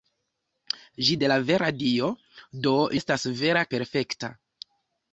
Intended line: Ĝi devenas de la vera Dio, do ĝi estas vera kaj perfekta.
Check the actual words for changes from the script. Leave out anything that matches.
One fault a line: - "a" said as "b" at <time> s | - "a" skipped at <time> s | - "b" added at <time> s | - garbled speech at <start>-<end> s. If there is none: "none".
- "devenas" skipped at 1.2 s
- "ĝi" skipped at 2.8 s
- "kaj" skipped at 3.7 s